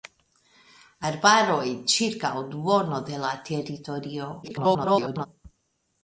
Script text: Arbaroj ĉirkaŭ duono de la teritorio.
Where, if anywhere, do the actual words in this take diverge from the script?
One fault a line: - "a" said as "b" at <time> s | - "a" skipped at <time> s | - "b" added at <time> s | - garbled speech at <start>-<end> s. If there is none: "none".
- garbled speech at 4.4-5.3 s